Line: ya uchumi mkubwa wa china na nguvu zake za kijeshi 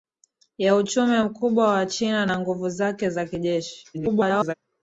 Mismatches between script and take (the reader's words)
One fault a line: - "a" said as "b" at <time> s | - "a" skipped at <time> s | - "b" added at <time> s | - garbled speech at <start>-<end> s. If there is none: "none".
- garbled speech at 3.9-4.5 s